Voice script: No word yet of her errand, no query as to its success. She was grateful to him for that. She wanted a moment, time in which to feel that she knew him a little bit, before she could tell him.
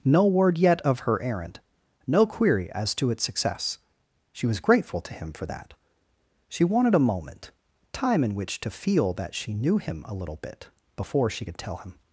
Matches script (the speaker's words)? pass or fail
pass